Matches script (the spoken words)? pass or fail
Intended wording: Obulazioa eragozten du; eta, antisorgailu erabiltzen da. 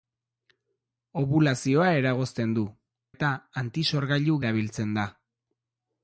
pass